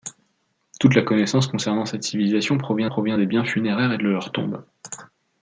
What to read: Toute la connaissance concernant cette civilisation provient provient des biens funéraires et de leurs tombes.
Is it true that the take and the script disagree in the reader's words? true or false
false